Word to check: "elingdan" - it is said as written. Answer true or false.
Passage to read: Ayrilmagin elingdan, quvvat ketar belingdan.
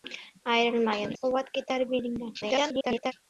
false